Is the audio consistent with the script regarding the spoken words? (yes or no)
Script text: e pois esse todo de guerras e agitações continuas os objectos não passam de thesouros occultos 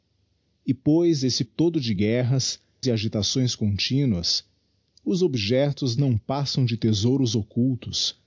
yes